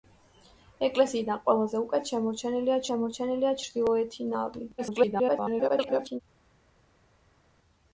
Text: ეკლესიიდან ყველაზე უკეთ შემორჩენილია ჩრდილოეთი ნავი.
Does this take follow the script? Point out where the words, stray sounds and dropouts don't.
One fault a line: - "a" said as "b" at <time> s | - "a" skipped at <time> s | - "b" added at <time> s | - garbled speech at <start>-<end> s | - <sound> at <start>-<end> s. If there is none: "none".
- "შემორჩენილია" added at 2.9 s
- garbled speech at 4.8-6.2 s